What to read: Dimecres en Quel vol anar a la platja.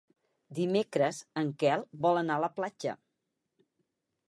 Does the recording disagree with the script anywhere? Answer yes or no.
no